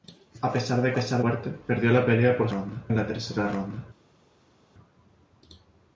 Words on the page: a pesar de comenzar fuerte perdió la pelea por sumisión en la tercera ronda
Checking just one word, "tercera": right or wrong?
right